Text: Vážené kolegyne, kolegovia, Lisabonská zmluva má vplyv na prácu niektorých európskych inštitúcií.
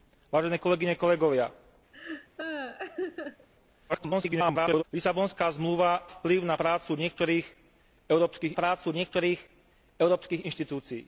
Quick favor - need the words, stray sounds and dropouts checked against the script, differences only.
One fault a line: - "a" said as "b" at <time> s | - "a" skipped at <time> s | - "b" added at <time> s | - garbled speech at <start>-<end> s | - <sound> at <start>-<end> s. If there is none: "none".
- laugh at 1.9-3.5 s
- garbled speech at 3.9-4.8 s
- "má" skipped at 6.1 s
- "prácu niektorých európskych" added at 8.5 s